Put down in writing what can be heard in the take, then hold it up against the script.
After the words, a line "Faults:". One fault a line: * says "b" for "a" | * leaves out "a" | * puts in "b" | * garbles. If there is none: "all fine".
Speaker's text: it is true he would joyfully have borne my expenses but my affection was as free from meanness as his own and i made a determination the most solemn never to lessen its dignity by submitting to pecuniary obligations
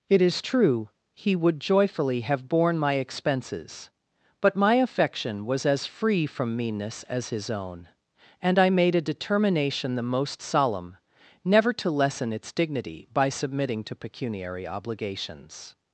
it is true he would joyfully have borne my expenses but my affection was as free from meanness as his own and i made a determination the most solemn never to lessen its dignity by submitting to pecuniary obligations
Faults:
all fine